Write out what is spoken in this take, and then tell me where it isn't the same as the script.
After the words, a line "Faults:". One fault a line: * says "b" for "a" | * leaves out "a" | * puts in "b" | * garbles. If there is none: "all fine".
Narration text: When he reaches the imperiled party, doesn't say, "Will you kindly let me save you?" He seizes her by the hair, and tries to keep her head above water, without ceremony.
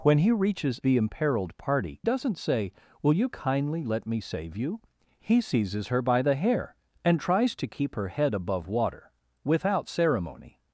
When he reaches the imperiled party, doesn't say, "Will you kindly let me save you?" He seizes her by the hair, and tries to keep her head above water, without ceremony.
Faults:
all fine